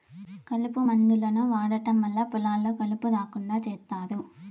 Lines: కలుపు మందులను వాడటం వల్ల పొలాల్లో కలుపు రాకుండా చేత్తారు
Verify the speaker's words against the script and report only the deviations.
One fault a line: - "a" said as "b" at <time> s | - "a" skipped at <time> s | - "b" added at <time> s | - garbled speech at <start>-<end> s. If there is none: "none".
none